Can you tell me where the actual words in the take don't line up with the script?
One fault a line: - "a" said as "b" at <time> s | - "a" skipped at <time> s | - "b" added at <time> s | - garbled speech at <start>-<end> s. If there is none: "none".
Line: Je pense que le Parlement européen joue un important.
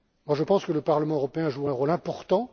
- "rôle" added at 1.7 s